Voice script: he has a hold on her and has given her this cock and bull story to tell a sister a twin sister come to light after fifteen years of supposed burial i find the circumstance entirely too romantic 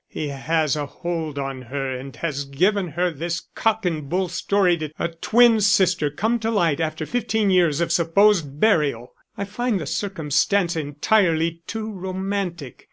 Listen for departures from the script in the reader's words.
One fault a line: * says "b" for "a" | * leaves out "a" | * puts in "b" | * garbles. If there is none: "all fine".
* leaves out "tell a sister"